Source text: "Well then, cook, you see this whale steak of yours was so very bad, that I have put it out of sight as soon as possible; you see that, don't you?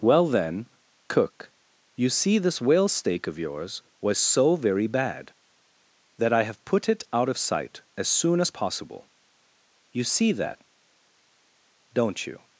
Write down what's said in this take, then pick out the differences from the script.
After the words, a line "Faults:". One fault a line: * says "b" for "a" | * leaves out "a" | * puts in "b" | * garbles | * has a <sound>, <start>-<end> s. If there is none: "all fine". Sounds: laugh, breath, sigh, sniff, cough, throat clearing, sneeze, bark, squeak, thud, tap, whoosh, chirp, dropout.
"Well then, cook, you see this whale steak of yours was so very bad, that I have put it out of sight as soon as possible; you see that, don't you?
Faults:
all fine